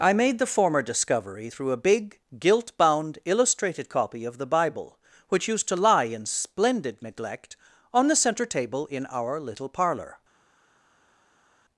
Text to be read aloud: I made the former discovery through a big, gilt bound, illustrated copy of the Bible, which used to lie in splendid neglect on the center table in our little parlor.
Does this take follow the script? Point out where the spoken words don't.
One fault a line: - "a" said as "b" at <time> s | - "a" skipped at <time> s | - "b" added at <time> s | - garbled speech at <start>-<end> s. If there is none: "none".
none